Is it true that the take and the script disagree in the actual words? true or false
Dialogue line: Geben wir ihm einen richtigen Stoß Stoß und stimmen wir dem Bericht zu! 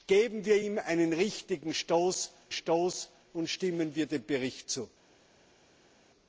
false